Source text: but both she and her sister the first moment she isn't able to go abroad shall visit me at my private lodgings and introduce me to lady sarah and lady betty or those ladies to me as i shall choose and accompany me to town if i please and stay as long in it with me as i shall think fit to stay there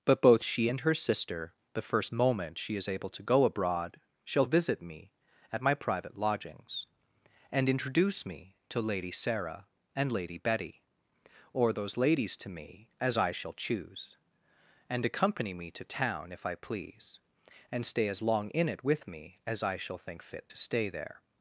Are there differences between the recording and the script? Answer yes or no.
yes